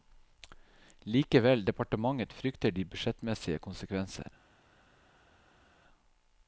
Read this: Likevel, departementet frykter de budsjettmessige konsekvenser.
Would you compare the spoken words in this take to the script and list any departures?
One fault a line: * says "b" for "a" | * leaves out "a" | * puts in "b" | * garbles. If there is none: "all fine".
all fine